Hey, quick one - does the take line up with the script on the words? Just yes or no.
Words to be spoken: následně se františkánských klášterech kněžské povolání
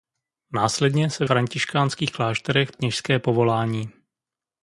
yes